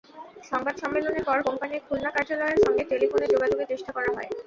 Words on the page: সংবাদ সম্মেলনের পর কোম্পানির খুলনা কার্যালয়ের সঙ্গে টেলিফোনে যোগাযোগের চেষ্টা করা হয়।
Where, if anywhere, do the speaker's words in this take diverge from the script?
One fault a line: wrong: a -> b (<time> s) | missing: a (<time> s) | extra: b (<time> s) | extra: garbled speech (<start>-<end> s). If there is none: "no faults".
no faults